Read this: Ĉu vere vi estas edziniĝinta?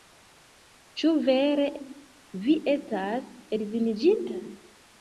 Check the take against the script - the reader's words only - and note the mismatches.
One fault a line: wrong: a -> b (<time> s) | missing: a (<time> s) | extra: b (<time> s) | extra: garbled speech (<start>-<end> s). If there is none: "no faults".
no faults